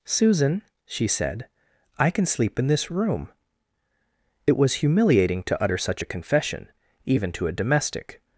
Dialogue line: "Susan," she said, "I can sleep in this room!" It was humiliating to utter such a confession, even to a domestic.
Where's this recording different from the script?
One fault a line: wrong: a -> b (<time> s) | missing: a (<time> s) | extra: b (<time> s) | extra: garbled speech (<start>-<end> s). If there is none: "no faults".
no faults